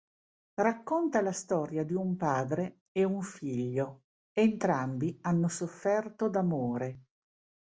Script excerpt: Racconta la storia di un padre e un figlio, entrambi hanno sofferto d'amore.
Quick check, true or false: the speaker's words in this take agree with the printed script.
true